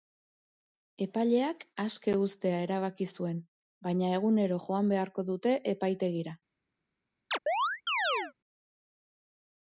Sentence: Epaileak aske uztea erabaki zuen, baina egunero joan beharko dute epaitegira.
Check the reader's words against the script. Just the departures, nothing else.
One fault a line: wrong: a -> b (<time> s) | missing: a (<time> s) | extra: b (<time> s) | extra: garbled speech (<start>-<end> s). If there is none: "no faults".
no faults